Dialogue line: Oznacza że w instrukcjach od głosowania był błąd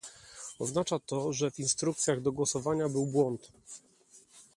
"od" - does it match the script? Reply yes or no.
no